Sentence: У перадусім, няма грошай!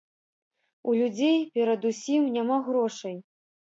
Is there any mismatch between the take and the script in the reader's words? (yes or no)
yes